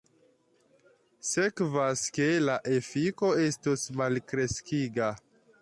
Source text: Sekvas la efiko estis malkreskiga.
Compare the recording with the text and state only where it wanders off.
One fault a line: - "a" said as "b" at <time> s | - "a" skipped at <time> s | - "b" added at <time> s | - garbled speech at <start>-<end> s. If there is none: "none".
- "ke" added at 2.2 s
- "estis" said as "estos" at 3.5 s